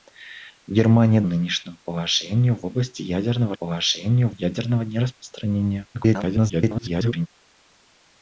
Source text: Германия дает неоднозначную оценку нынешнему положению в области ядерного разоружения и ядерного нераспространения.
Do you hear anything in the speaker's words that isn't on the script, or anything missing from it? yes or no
yes